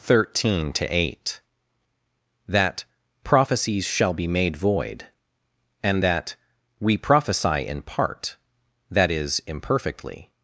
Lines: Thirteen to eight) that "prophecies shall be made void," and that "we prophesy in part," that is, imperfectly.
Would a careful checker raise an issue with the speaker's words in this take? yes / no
no